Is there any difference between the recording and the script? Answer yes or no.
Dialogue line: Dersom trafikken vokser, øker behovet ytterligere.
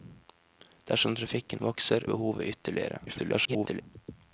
yes